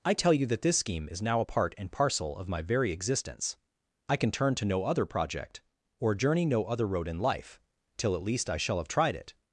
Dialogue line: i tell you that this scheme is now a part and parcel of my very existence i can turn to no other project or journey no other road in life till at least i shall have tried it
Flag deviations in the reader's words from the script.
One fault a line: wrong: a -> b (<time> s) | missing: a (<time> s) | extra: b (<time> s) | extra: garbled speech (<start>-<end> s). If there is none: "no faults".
no faults